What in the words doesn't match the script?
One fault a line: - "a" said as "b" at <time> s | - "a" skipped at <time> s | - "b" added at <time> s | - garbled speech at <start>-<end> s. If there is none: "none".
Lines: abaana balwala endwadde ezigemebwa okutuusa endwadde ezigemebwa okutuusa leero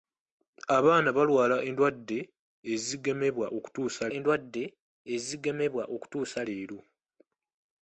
none